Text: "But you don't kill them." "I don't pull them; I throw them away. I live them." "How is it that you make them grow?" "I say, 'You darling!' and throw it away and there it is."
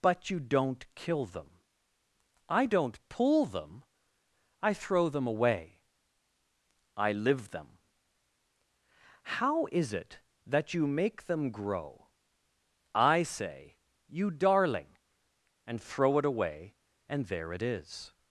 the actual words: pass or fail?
pass